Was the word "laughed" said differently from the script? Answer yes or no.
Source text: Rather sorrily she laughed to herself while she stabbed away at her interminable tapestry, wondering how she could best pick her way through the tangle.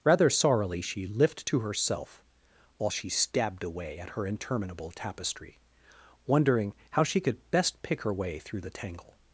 yes